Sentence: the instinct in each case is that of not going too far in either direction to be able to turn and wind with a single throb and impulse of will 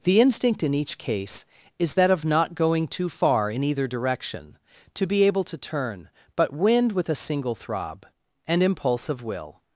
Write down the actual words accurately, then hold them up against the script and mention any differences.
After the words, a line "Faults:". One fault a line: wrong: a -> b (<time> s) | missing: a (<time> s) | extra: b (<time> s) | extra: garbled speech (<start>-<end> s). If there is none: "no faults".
the instinct in each case is that of not going too far in either direction to be able to turn but wind with a single throb and impulse of will
Faults:
wrong: and -> but (6.3 s)